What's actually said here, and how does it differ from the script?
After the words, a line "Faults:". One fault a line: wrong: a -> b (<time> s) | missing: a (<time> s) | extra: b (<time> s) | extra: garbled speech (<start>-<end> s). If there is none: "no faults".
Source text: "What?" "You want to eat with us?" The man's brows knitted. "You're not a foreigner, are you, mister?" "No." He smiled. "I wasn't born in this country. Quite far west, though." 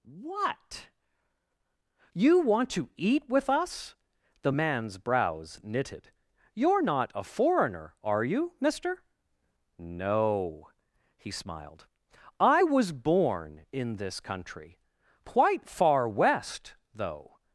"What?" "You want to eat with us?" The man's brows knitted. "You're not a foreigner, are you, mister?" "No." He smiled. "I was born in this country. Quite far west, though."
Faults:
wrong: wasn't -> was (12.6 s)